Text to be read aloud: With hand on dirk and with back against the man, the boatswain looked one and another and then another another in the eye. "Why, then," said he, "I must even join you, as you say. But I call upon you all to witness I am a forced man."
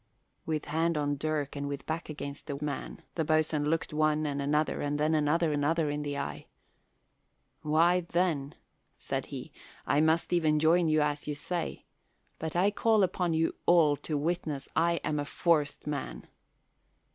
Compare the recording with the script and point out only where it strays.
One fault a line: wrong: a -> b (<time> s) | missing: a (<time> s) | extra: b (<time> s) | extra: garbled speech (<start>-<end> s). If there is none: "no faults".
no faults